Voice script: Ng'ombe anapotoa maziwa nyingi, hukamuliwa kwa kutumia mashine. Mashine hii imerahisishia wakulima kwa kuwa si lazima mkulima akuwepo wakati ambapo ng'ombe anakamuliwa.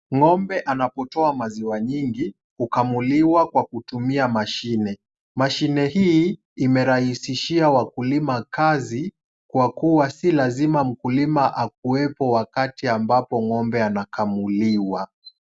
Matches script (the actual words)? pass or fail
fail